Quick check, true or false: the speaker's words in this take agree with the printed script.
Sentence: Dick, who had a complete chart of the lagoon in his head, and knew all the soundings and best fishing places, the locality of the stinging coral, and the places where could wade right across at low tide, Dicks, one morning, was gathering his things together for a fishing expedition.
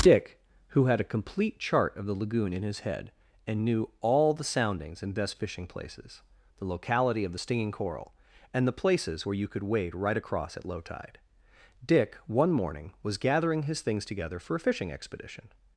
false